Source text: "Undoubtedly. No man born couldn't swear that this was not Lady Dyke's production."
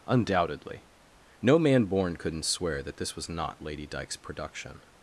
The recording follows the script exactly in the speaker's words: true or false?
true